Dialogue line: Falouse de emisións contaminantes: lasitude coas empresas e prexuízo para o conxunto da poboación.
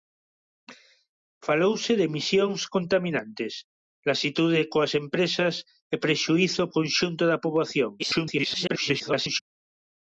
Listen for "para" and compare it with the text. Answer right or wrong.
wrong